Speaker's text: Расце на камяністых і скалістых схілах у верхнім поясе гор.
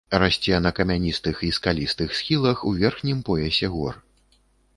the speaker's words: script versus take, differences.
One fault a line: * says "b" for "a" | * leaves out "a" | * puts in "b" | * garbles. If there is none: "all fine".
all fine